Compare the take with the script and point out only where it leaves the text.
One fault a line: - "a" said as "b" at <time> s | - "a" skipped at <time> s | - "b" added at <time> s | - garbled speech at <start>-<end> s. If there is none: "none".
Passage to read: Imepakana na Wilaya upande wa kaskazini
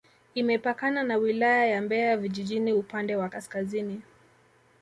- "ya Mbeya vijijini" added at 1.6 s